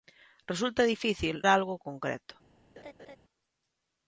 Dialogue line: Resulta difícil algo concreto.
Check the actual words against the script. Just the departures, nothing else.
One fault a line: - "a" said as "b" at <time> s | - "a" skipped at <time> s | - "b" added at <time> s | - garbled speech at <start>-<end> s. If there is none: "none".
none